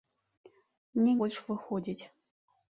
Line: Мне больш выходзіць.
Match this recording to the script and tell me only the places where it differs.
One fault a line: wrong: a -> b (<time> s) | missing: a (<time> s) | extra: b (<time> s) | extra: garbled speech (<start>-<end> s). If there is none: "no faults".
no faults